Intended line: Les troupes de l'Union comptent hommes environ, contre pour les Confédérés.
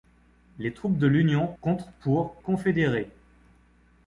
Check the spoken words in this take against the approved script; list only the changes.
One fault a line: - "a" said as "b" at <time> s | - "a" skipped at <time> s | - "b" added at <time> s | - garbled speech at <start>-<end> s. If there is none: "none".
- "comptent hommes environ" skipped at 1.4 s
- "les" skipped at 2.4 s